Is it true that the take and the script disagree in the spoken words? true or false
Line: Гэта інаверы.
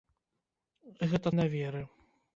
false